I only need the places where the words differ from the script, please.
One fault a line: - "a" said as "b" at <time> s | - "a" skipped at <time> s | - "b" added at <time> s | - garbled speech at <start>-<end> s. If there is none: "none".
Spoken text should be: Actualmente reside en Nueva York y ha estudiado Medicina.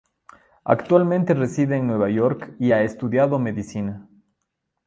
none